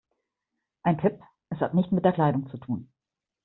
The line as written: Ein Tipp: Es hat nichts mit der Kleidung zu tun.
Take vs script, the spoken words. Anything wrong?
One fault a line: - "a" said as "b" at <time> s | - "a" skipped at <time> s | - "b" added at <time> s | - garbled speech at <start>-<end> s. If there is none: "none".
none